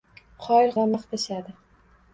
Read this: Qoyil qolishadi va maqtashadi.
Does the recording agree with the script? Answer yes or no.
no